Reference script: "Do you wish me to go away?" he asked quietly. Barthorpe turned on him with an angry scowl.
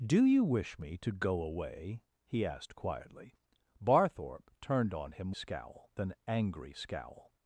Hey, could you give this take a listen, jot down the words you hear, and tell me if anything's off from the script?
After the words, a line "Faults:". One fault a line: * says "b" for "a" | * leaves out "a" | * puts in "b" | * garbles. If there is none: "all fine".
"Do you wish me to go away?" he asked quietly. Barthorpe turned on him scowl an angry scowl.
Faults:
* says "scowl" for "with"